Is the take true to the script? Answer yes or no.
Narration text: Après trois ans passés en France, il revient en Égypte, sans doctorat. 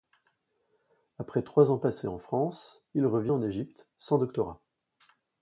yes